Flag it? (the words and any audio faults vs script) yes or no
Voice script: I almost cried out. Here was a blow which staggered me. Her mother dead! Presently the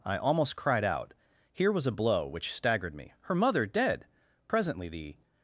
no